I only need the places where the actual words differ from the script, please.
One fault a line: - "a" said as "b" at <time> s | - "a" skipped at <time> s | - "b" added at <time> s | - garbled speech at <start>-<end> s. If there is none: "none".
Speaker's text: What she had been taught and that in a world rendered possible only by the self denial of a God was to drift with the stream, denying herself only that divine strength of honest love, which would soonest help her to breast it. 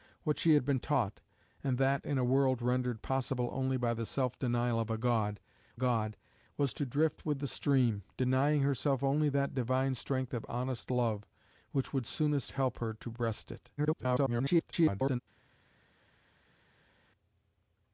- "God" added at 5.7 s
- garbled speech at 13.8-15.2 s